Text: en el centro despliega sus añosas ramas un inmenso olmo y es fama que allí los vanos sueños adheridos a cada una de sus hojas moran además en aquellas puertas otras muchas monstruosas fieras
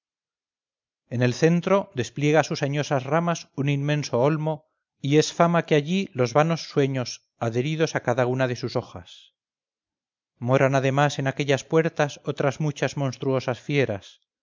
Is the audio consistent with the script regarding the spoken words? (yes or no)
yes